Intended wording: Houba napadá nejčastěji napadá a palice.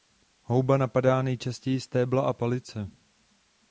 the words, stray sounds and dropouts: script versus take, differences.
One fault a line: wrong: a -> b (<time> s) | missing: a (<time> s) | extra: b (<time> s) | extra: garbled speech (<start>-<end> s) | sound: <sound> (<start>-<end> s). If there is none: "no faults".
wrong: napadá -> stébla (1.8 s)